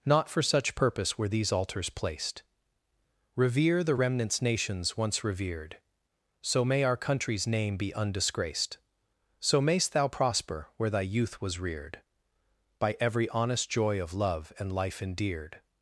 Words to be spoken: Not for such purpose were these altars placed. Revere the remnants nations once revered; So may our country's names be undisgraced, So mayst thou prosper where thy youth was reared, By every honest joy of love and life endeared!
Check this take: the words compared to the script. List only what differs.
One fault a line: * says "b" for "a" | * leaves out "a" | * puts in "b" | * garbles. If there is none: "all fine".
* says "name" for "names"